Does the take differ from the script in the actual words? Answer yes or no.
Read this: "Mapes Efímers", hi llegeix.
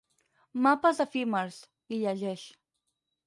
no